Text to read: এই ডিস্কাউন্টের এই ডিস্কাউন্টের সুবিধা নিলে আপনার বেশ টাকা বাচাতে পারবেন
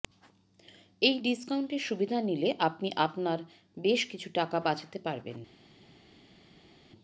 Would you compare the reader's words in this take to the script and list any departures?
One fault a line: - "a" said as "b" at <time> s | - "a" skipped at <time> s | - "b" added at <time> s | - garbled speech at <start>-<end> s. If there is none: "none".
- "এই ডিস্কাউন্টের" skipped at 1.8 s
- "আপনি" added at 2.7 s
- "কিছু" added at 4.1 s